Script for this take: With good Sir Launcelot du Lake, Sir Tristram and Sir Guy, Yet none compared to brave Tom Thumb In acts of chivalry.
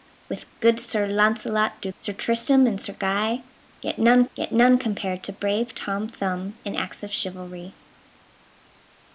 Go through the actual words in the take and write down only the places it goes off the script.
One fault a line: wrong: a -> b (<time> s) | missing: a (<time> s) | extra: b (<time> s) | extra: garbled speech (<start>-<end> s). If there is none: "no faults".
missing: Lake (1.9 s)
extra: Yet none (4.3 s)